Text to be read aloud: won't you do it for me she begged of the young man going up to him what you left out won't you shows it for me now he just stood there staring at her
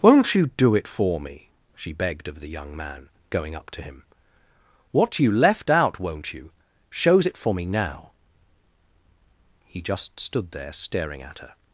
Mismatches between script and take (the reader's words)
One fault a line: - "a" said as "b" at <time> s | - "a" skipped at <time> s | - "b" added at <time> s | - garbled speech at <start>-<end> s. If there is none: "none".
none